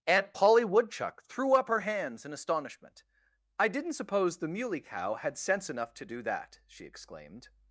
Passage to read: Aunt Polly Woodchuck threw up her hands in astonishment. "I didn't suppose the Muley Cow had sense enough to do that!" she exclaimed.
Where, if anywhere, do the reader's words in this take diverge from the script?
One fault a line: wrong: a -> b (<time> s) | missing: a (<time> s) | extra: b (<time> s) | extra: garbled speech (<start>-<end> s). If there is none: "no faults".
no faults